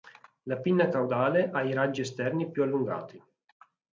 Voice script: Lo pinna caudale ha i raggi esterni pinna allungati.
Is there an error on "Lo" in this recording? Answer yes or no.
yes